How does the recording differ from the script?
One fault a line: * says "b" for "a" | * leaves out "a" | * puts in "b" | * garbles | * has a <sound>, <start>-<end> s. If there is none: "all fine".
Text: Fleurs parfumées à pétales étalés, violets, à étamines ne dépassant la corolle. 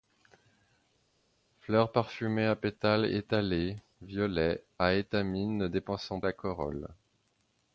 all fine